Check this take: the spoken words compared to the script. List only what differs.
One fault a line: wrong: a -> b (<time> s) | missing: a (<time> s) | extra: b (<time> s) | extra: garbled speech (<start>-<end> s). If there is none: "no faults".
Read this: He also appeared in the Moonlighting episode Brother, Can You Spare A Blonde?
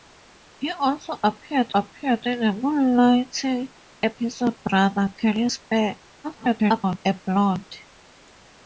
extra: appeared (1.7 s)
extra: garbled speech (6.2-7.0 s)